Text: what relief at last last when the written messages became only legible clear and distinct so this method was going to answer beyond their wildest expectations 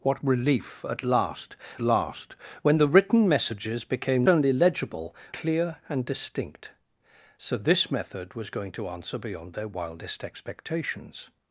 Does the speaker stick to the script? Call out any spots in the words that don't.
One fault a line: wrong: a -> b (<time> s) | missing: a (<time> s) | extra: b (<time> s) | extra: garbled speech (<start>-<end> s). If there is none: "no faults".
no faults